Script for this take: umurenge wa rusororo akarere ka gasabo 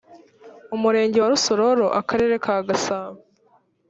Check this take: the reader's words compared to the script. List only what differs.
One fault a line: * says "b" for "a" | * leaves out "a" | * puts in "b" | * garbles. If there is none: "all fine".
all fine